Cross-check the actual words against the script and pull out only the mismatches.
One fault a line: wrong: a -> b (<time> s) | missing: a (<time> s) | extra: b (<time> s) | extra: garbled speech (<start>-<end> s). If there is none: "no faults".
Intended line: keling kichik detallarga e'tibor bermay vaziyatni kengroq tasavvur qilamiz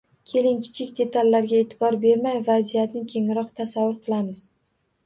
no faults